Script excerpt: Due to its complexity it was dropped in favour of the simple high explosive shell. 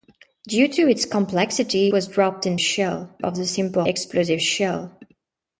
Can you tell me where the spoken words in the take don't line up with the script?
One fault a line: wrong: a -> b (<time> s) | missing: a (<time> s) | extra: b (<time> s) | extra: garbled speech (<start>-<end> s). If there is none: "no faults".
missing: it (1.9 s)
wrong: favour -> shell (2.6 s)
missing: high (3.8 s)